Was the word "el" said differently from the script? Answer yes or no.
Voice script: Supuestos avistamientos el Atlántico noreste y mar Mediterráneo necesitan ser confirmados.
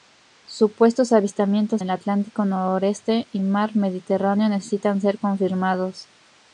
no